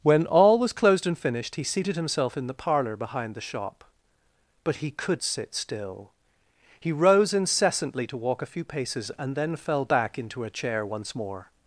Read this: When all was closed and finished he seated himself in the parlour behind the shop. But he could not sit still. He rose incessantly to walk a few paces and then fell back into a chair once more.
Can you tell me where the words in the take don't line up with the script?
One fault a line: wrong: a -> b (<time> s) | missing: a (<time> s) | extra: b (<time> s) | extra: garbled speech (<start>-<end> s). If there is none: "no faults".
missing: not (5.2 s)